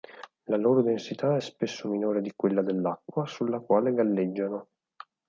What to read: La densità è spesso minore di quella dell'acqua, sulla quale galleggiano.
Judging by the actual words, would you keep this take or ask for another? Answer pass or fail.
fail